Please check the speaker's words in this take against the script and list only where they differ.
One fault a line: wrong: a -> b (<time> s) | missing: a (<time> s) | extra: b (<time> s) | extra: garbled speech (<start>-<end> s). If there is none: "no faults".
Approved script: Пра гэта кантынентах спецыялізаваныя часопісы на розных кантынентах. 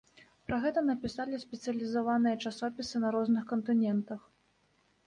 wrong: кантынентах -> напісалі (0.9 s)